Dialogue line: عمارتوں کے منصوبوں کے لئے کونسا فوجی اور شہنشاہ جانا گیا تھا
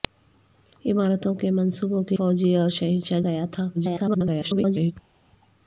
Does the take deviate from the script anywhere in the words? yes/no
yes